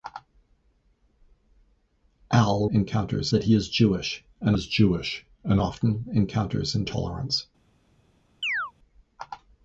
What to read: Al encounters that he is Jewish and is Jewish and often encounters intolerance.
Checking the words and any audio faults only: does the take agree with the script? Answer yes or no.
no